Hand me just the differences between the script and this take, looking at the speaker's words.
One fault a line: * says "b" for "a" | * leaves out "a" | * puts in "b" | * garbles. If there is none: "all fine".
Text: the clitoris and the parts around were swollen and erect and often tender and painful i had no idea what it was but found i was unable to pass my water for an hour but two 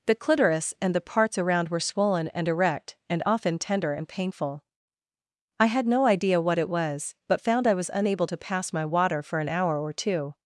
* says "or" for "but"